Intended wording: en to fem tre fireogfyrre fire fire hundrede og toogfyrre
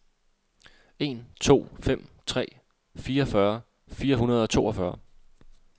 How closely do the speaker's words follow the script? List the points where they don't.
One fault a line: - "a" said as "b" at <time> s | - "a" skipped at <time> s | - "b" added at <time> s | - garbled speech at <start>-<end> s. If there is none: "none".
- "fire" skipped at 4.2 s